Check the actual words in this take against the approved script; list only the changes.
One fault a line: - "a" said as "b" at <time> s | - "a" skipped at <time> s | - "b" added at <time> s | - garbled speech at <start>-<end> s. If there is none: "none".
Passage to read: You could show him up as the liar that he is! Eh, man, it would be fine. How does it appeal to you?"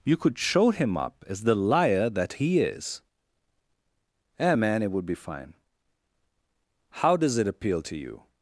none